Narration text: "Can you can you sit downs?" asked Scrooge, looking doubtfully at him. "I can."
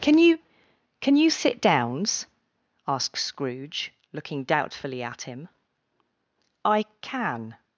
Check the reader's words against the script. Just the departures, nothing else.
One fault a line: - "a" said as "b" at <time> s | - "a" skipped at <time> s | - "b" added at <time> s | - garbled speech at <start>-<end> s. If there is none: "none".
none